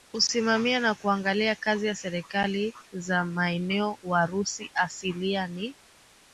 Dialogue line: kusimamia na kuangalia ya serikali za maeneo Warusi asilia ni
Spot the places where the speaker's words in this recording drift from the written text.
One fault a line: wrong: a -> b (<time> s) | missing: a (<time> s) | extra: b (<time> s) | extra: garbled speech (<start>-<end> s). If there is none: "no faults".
extra: kazi (1.6 s)